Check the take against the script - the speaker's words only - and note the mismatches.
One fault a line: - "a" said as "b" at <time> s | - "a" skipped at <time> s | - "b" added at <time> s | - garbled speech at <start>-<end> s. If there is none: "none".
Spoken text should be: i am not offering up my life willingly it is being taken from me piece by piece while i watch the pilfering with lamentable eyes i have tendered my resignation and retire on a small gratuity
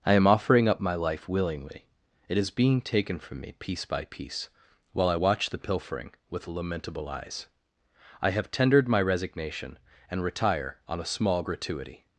- "not" skipped at 0.3 s